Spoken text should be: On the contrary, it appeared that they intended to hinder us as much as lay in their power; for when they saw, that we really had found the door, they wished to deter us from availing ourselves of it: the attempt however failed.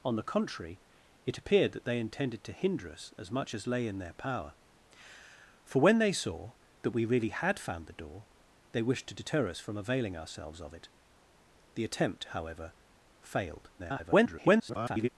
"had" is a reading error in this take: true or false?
false